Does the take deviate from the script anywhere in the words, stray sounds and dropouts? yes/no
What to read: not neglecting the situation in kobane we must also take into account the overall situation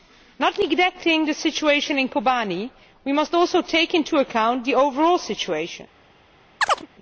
yes